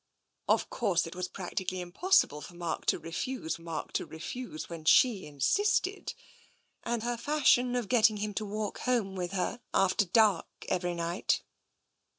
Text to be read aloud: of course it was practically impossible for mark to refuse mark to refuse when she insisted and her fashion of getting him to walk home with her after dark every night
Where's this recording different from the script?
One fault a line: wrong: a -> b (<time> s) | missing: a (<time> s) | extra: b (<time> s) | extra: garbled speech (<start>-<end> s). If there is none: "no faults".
no faults